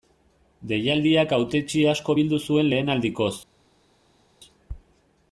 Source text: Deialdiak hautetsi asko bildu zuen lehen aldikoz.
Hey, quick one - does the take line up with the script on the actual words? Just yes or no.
yes